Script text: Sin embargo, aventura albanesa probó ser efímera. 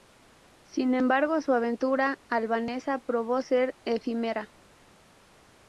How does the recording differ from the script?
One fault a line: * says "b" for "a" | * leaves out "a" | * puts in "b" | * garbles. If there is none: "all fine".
* puts in "su"